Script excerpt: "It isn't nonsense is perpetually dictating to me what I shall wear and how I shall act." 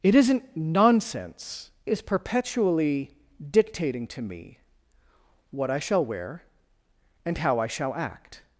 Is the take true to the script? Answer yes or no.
yes